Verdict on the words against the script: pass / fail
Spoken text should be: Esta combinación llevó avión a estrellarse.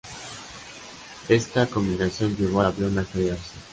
pass